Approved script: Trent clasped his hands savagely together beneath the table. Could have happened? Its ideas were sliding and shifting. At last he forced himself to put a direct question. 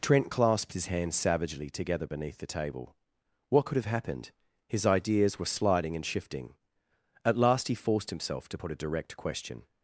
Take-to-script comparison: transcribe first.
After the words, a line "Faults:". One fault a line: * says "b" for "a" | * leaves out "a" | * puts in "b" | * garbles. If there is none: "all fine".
Trent clasped his hands savagely together beneath the table. What could have happened? His ideas were sliding and shifting. At last he forced himself to put a direct question.
Faults:
* puts in "What"
* says "His" for "Its"